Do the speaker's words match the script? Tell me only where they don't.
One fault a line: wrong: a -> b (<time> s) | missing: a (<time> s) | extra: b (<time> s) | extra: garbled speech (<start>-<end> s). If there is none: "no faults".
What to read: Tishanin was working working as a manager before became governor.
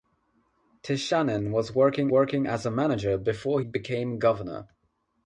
no faults